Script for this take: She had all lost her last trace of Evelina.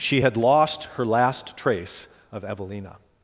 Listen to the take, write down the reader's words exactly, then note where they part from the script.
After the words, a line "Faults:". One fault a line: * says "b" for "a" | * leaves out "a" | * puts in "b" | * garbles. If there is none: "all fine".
She had lost her last trace of Evelina.
Faults:
* leaves out "all"